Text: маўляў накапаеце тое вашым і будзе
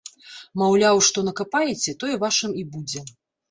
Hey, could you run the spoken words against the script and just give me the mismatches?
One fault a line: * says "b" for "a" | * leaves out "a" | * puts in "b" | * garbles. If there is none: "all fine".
* puts in "што"